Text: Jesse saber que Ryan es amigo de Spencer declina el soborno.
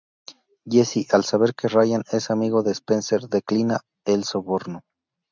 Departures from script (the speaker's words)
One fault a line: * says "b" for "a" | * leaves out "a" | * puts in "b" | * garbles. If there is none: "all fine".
* puts in "al"